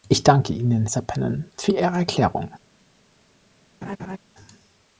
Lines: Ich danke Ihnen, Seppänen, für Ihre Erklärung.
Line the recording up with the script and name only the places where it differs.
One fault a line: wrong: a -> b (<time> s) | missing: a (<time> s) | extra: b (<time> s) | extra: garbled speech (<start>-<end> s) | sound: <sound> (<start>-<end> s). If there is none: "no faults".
sound: laugh (3.8-4.2 s)